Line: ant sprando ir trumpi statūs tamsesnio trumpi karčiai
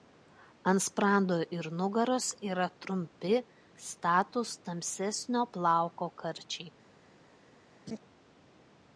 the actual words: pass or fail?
fail